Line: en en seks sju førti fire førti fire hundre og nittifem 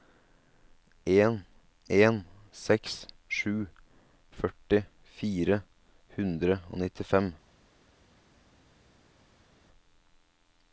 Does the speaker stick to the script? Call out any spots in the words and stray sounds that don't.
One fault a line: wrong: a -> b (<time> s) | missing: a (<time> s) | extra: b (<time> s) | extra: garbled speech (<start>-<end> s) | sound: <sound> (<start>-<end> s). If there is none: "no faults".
missing: førti fire (5.6 s)